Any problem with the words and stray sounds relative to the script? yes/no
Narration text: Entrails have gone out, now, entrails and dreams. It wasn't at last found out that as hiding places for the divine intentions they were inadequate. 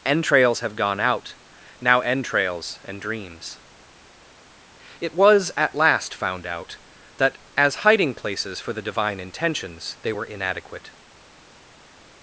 yes